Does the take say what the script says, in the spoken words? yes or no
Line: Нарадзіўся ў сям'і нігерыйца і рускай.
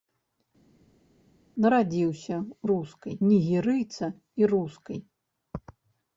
no